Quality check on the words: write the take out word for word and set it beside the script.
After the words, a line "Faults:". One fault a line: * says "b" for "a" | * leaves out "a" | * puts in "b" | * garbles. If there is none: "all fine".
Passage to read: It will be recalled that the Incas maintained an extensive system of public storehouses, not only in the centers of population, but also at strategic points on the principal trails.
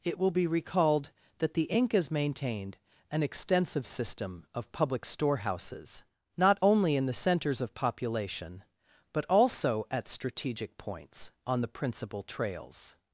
It will be recalled that the Incas maintained an extensive system of public storehouses, not only in the centers of population, but also at strategic points on the principal trails.
Faults:
all fine